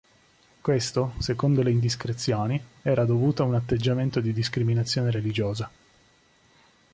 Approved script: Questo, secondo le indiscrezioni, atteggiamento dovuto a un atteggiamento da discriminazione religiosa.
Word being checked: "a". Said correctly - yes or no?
yes